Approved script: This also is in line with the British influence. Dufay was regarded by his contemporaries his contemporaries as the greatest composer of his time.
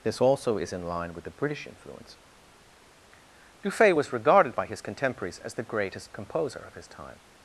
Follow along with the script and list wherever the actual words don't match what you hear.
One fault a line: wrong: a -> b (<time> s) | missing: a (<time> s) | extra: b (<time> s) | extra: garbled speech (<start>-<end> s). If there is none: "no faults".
missing: his contemporaries (5.4 s)